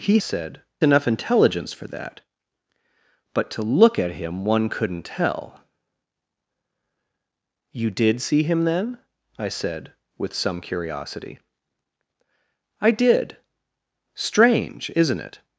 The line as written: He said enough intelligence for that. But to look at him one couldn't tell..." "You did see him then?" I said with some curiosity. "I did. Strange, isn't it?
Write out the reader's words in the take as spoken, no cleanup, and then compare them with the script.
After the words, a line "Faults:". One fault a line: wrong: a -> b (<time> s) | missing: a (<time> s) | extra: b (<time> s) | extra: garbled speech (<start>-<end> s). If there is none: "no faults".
He said enough intelligence for that. But to look at him one couldn't tell..." "You did see him then?" I said with some curiosity. "I did. Strange, isn't it?
Faults:
no faults